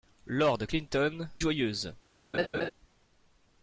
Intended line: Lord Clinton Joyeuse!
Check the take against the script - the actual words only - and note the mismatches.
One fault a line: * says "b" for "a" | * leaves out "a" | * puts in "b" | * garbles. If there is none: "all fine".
all fine